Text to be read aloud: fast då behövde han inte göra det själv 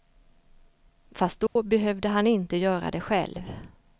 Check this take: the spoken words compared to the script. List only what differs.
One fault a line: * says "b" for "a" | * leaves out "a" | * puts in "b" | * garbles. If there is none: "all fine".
all fine